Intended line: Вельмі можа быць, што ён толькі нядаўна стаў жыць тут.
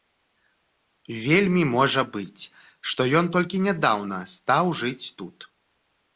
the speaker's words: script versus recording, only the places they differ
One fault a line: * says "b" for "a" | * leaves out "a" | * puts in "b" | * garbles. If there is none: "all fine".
all fine